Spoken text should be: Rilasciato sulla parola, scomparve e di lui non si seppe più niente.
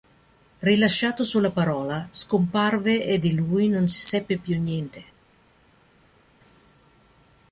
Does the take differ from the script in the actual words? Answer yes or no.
no